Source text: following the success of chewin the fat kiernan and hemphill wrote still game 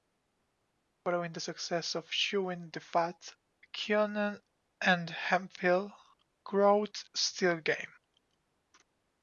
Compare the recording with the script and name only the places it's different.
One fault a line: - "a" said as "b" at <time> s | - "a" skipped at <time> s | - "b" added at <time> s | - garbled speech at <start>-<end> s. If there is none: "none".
none